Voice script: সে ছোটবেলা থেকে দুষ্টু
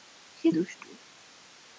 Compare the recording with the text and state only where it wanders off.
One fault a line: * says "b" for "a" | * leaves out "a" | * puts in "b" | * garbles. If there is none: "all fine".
* leaves out "ছোটবেলা থেকে"